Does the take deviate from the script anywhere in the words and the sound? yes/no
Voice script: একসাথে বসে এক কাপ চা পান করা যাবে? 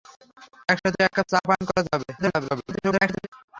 yes